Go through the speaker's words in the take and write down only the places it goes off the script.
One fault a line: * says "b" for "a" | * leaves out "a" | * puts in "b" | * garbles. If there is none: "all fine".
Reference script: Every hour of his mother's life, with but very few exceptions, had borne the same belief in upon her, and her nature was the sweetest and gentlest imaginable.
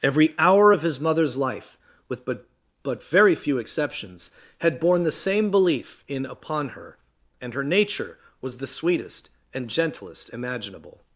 * puts in "but"